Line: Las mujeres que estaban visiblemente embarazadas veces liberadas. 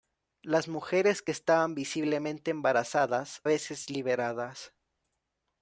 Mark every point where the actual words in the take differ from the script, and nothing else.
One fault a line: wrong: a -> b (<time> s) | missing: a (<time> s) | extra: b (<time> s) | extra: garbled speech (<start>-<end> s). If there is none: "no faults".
no faults